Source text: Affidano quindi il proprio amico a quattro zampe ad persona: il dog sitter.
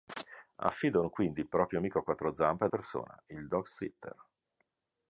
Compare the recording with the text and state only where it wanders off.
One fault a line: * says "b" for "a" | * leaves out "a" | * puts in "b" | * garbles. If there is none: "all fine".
all fine